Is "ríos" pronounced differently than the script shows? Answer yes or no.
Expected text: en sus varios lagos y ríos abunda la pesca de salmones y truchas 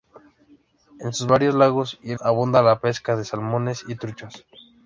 yes